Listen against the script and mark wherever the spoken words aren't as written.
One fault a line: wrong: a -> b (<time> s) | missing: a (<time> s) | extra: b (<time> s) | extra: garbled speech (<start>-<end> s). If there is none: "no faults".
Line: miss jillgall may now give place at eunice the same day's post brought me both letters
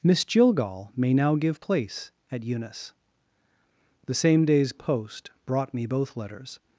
no faults